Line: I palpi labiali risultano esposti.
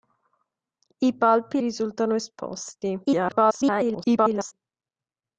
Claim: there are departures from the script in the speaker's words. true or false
true